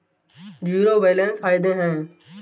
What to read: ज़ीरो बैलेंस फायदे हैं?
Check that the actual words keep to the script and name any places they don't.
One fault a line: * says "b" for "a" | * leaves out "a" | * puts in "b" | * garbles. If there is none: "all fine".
all fine